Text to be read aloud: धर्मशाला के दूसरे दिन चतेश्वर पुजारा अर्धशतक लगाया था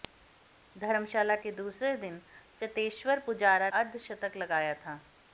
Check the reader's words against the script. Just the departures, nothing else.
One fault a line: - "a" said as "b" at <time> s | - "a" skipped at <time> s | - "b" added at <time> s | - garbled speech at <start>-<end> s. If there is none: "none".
none